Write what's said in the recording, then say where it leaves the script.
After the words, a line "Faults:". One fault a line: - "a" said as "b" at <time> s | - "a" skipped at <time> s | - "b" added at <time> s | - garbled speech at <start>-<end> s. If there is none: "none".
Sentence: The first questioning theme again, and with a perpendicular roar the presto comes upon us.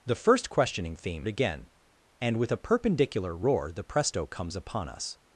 The first questioning theme again, and with a perpendicular roar the presto comes upon us.
Faults:
none